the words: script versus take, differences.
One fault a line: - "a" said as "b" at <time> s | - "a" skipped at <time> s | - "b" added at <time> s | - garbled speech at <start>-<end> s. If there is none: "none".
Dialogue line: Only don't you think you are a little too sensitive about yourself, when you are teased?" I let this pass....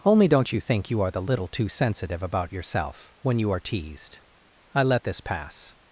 - "a" said as "the" at 1.1 s